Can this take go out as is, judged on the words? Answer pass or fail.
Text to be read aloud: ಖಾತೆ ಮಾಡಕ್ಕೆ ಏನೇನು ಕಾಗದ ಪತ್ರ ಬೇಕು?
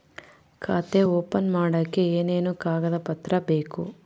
fail